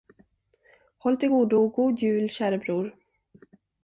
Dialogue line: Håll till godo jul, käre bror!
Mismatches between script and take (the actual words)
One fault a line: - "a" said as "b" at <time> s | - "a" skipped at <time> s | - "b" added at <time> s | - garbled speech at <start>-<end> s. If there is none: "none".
- "och god" added at 1.5 s